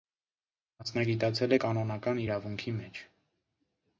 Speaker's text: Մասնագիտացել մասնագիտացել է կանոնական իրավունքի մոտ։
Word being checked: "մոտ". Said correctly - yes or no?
no